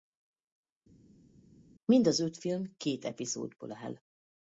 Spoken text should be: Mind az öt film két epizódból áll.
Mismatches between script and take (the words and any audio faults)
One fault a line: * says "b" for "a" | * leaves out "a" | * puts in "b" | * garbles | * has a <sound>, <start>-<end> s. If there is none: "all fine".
all fine